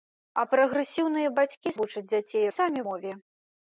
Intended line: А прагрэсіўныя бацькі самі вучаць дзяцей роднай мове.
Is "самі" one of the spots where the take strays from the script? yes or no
yes